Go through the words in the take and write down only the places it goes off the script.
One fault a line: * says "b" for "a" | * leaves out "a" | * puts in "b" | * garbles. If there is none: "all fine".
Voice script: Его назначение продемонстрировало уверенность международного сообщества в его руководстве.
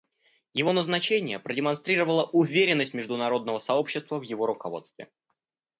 all fine